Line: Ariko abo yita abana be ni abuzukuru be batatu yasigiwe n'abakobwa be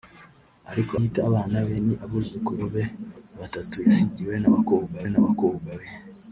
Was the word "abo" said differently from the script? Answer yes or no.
yes